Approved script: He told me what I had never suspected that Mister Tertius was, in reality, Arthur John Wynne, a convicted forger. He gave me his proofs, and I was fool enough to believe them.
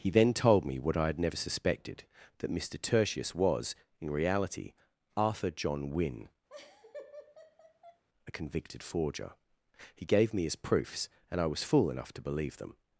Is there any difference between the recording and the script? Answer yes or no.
yes